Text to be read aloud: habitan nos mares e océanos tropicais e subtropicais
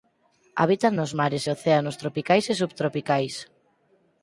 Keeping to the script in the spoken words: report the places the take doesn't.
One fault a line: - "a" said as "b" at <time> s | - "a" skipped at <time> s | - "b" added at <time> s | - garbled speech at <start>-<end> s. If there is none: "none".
none